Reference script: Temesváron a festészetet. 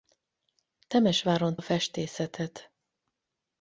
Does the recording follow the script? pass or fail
pass